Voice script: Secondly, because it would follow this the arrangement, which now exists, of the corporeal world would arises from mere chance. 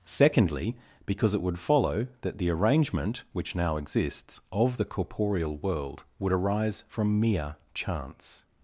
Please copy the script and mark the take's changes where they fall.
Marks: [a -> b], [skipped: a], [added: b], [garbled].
Secondly, because it would follow [this -> that] the arrangement, which now exists, of the corporeal world would [arises -> arise] from mere chance.